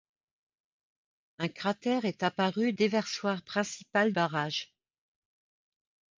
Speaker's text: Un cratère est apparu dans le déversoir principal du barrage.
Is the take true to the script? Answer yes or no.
no